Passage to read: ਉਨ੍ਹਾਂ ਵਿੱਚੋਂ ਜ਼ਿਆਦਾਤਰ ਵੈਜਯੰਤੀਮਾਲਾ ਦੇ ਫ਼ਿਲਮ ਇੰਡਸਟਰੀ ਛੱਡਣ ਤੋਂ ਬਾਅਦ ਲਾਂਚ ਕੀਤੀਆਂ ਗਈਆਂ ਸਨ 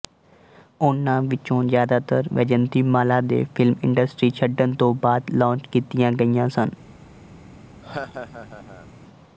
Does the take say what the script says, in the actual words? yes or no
yes